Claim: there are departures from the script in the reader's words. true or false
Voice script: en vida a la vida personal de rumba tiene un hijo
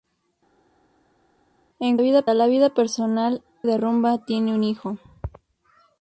false